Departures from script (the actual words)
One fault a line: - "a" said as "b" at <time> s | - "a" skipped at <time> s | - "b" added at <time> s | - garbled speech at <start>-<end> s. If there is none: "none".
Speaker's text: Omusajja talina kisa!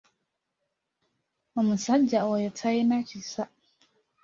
- "oyo" added at 2.3 s